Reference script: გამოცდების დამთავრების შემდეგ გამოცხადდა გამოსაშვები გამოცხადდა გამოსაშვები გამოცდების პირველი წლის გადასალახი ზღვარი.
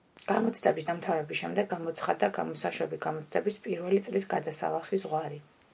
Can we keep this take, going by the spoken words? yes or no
no